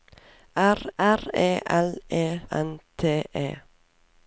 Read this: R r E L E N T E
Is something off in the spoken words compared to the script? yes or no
no